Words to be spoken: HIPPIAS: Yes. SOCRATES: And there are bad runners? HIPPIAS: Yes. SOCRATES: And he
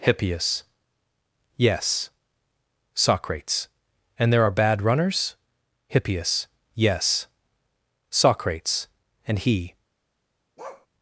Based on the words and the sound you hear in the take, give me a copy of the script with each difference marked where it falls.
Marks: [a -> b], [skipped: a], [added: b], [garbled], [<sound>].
HIPPIAS: Yes. SOCRATES: And there are bad runners? HIPPIAS: Yes. SOCRATES: And he [bark]